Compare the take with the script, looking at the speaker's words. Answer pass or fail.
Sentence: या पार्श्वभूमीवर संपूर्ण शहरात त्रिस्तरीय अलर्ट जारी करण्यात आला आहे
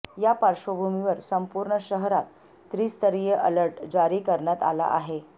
pass